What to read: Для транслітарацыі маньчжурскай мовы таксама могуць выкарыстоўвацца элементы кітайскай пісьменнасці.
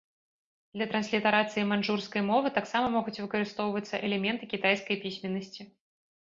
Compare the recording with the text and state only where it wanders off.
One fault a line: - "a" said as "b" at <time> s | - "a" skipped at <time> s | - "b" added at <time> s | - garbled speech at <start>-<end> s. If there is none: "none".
none